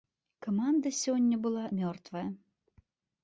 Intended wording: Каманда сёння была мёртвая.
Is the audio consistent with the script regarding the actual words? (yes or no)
yes